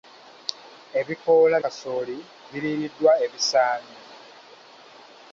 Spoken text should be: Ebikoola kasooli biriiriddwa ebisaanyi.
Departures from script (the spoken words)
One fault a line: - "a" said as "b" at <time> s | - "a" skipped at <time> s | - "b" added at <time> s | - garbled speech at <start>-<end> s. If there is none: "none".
none